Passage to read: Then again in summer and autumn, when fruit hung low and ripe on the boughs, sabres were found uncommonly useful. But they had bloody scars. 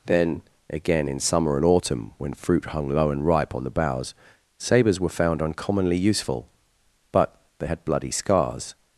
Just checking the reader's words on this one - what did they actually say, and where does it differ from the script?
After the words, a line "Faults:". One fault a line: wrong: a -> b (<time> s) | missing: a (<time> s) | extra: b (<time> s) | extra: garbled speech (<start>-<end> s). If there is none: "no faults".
Then again in summer and autumn, when fruit hung low and ripe on the boughs, sabres were found uncommonly useful. But they had bloody scars.
Faults:
no faults